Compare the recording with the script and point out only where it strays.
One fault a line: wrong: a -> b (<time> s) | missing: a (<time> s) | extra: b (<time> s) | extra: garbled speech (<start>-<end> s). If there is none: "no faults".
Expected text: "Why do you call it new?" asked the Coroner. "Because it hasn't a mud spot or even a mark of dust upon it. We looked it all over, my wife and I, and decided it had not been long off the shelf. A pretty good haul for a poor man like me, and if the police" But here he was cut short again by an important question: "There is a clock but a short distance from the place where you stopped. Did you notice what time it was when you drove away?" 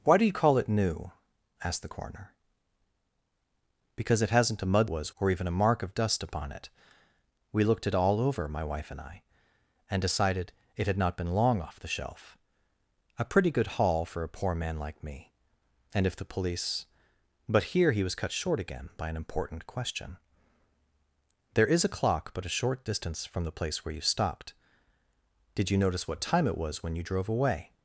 wrong: spot -> was (4.9 s)